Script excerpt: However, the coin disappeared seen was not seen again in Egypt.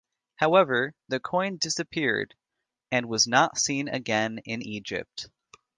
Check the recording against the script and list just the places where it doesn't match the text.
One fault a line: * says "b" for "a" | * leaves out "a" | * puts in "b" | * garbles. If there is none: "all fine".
* says "and" for "seen"